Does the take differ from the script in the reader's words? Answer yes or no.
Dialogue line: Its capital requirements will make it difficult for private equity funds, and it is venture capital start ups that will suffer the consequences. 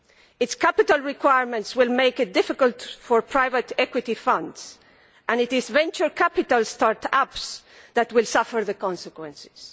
no